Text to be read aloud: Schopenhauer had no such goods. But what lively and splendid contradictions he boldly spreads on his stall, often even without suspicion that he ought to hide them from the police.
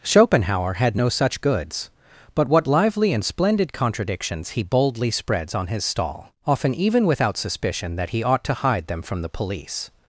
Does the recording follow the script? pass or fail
pass